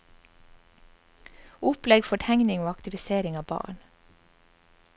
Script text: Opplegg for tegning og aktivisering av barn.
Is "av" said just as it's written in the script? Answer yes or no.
yes